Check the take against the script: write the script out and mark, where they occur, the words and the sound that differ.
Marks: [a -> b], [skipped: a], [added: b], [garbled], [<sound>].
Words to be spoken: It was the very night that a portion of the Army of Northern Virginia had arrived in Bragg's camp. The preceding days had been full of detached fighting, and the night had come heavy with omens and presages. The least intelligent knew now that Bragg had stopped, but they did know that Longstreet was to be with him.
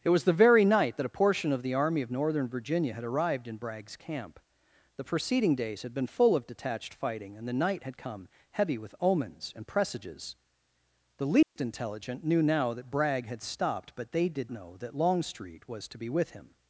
It was the very night that a portion of the Army of Northern Virginia had arrived in Bragg's camp. The preceding days had been full of detached fighting, and the night had come heavy with omens and presages. The least [dropout] intelligent knew now that Bragg had stopped, but they did know that Longstreet was to be with him.